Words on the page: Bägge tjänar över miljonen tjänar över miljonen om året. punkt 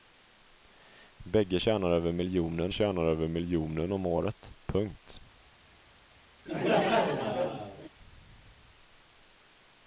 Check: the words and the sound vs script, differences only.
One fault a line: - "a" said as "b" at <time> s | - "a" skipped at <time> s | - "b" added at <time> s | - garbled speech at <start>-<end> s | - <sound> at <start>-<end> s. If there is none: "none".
- laugh at 6.5-7.9 s